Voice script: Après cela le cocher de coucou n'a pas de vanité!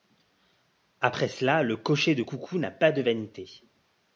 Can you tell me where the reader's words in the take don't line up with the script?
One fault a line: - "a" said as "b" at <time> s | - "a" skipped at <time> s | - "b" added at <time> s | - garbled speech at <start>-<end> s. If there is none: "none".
none